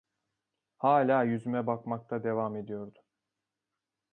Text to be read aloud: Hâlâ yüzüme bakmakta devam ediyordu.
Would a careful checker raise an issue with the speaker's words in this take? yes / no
no